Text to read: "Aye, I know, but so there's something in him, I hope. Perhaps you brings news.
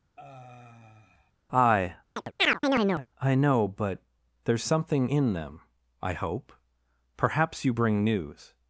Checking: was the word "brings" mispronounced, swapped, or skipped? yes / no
yes